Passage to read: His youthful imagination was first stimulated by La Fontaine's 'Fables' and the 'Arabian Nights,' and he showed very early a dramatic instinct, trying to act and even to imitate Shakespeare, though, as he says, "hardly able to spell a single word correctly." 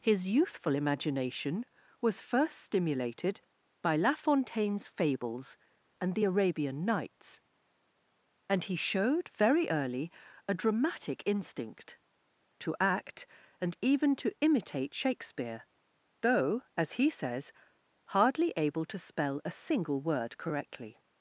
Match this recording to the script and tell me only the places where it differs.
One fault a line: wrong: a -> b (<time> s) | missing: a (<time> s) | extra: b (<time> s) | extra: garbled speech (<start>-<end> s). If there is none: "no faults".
missing: trying (12.0 s)